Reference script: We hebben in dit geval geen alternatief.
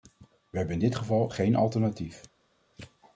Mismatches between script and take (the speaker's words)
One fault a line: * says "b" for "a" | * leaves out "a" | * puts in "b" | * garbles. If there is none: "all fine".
all fine